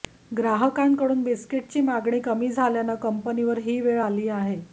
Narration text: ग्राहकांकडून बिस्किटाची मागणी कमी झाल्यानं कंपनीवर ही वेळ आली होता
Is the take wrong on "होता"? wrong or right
wrong